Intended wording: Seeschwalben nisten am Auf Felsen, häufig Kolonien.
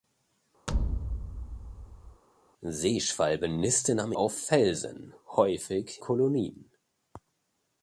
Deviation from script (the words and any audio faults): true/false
true